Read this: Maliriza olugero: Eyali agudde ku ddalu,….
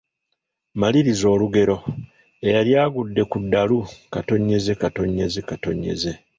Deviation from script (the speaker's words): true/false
false